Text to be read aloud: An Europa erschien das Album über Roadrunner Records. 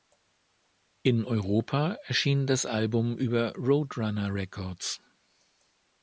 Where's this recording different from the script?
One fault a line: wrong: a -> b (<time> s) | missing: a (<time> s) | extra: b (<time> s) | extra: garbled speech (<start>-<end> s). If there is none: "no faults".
wrong: An -> In (1.0 s)